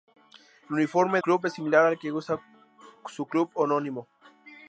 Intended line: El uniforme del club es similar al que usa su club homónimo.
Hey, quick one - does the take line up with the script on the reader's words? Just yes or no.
no